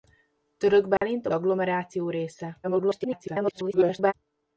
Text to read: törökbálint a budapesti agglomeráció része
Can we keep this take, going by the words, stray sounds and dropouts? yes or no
no